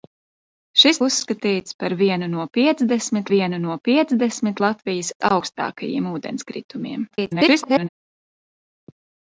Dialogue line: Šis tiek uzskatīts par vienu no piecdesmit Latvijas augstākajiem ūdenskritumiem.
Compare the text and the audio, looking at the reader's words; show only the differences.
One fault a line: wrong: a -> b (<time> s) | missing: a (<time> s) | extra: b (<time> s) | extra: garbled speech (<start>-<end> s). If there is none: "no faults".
missing: tiek (1.0 s)
extra: vienu no piecdesmit (3.3 s)
extra: garbled speech (7.1-7.9 s)